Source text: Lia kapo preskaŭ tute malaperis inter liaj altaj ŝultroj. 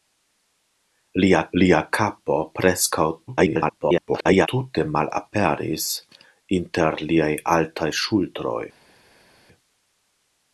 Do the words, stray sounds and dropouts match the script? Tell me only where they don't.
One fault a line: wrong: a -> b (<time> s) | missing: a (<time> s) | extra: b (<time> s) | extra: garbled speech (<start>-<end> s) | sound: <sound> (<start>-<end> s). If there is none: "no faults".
extra: lia (1.6 s)
extra: garbled speech (3.3-4.5 s)